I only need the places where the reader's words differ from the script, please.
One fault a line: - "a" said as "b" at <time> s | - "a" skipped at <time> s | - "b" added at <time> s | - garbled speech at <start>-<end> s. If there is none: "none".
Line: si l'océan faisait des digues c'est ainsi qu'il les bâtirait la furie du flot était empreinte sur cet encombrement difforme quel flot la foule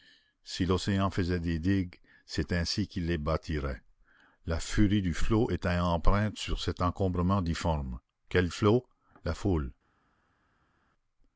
none